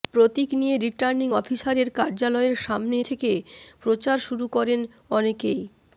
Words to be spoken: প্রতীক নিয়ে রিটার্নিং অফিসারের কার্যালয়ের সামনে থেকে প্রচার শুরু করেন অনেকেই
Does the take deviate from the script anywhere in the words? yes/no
no